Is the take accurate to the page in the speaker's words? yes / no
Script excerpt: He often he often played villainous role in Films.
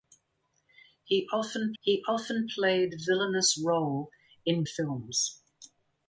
yes